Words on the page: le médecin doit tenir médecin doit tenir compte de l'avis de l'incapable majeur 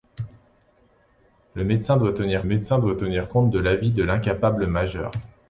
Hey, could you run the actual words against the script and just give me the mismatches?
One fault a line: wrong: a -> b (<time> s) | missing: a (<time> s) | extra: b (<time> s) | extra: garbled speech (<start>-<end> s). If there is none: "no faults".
no faults